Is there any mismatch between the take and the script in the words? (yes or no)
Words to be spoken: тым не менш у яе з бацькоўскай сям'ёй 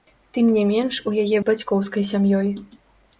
no